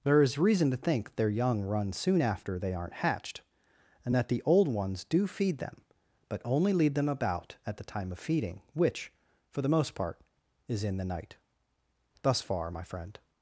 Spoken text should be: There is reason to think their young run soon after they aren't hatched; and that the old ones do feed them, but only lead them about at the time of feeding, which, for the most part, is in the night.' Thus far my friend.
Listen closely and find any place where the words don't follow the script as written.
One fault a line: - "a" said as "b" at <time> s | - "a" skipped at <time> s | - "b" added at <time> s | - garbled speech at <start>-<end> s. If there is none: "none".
none